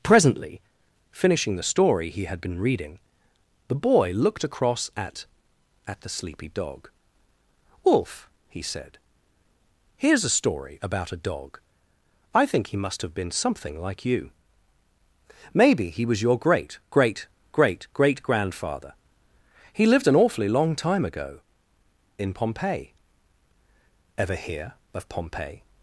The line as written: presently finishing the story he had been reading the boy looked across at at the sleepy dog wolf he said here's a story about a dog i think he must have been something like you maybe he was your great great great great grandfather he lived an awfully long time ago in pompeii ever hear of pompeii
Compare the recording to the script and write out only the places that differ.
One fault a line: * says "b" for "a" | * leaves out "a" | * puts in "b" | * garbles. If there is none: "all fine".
all fine